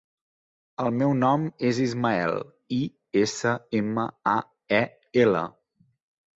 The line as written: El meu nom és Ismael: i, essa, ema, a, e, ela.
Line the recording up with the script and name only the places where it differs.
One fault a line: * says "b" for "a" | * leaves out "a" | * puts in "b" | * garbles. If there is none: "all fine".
all fine